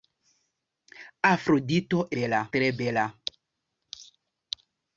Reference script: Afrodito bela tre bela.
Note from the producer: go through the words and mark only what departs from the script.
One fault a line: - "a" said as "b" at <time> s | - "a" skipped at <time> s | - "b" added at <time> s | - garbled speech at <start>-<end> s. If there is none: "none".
none